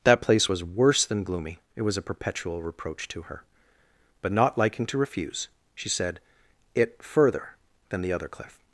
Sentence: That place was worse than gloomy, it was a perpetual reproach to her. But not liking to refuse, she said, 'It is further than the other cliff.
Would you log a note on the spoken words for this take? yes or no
yes